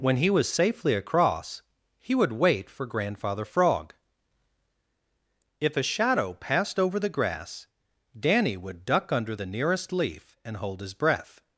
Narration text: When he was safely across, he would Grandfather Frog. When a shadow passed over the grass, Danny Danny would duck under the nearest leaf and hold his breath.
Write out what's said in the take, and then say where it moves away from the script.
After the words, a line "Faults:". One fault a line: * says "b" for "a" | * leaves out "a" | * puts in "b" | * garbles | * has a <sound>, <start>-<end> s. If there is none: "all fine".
When he was safely across, he would wait for Grandfather Frog. If a shadow passed over the grass, Danny would duck under the nearest leaf and hold his breath.
Faults:
* puts in "wait for"
* says "If" for "When"
* leaves out "Danny"